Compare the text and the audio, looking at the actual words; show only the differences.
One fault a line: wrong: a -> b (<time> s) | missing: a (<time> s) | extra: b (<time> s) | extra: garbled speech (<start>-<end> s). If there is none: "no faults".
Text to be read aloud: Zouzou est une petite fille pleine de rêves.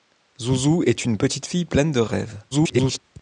extra: garbled speech (2.5-3.0 s)